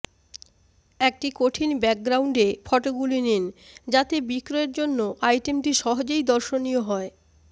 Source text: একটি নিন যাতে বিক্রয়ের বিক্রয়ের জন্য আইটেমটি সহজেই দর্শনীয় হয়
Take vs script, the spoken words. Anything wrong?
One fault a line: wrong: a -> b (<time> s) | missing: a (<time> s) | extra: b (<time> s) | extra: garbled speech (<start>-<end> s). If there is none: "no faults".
extra: কঠিন ব্যাকগ্রাউন্ডে ফটোগুলি (1.3 s)
missing: বিক্রয়ের (4.7 s)